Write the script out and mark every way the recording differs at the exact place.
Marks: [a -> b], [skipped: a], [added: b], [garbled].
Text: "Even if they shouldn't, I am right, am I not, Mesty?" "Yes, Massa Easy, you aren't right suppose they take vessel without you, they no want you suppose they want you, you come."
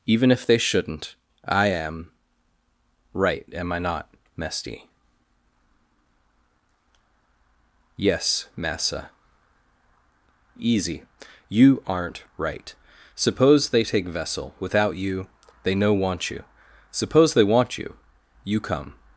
"Even if they shouldn't, I am right, am I not, Mesty?" "Yes, Massa Easy, you aren't right suppose they take vessel without you, they no want you suppose they want you, you come."